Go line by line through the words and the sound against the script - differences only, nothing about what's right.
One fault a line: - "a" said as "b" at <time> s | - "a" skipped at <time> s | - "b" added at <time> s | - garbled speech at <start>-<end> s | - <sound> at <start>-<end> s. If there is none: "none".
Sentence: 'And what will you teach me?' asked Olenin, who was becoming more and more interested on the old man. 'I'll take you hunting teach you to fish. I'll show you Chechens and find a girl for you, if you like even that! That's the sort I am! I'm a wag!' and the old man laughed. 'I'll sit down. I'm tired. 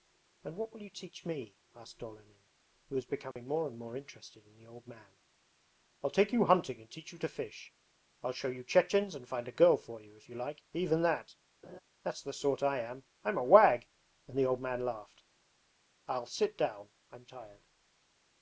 - dropout at 3.3-3.4 s
- "on" said as "in" at 4.5 s
- "and" added at 6.8 s
- laugh at 11.6-11.8 s